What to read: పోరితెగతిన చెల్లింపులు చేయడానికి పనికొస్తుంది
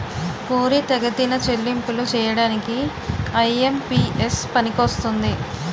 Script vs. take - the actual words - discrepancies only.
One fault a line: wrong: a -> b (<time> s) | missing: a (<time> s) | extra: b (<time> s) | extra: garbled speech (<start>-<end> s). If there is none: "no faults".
extra: ఐ.ఎం.పి.ఎస్ (3.4 s)